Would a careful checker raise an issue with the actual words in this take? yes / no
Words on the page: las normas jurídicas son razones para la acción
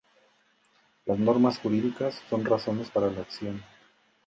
no